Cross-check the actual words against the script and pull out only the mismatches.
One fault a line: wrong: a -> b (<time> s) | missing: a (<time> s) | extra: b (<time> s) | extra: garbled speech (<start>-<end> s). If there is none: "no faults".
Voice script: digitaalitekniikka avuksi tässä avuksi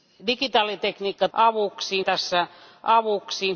no faults